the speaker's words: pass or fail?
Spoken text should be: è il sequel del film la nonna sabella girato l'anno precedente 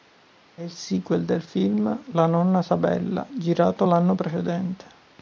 pass